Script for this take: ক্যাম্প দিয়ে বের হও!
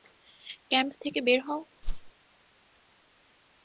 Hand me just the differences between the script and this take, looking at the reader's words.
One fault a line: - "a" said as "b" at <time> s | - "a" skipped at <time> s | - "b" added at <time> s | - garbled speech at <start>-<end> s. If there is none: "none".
- "দিয়ে" said as "থেকে" at 1.0 s